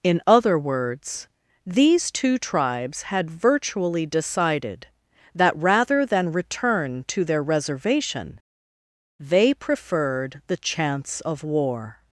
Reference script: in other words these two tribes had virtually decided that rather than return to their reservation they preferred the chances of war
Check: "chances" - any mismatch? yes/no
yes